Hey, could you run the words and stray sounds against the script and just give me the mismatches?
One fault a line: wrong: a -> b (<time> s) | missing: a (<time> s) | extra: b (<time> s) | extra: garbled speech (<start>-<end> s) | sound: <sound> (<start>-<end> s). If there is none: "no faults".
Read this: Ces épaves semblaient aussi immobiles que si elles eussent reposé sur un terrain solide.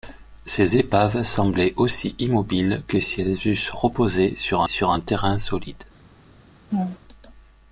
extra: sur (4.7 s)
sound: laugh (6.7-7.0 s)